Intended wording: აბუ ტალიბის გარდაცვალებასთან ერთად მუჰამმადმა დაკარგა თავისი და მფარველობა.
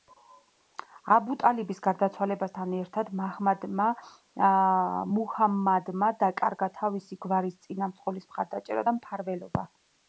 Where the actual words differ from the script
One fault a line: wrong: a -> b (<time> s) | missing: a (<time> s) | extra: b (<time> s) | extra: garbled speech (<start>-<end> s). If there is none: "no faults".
extra: გვარის წინამძღოლის მხარდაჭერა (7.3 s)